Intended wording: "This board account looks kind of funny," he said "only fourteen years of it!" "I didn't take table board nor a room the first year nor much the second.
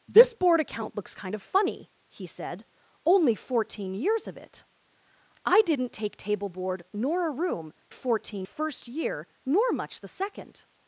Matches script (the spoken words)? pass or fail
fail